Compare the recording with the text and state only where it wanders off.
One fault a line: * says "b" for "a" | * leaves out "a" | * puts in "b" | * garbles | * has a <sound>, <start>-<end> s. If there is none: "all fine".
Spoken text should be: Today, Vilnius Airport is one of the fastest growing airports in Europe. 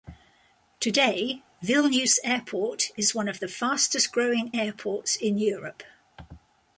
all fine